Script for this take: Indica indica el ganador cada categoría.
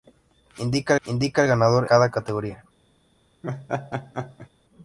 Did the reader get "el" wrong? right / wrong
right